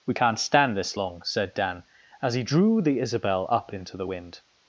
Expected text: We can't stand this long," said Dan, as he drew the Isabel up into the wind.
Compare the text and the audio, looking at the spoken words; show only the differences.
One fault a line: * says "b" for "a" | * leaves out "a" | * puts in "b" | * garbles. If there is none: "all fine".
all fine